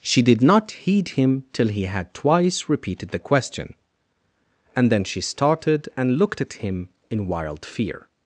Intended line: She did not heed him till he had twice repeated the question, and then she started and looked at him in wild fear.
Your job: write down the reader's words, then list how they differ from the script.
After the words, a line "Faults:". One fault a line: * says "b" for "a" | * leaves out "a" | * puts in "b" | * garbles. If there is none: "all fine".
She did not heed him till he had twice repeated the question, and then she started and looked at him in wild fear.
Faults:
all fine